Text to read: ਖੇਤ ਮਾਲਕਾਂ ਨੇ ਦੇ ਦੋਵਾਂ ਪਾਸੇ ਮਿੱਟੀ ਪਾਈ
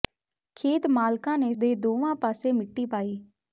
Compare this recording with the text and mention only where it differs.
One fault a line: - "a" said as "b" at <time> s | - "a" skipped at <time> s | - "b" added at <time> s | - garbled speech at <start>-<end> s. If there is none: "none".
none